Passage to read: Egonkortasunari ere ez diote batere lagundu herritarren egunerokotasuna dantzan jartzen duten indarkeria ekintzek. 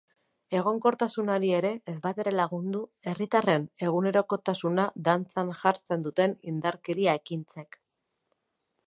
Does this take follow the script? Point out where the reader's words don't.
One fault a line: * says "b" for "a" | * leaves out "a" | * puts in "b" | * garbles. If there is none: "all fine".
* leaves out "diote"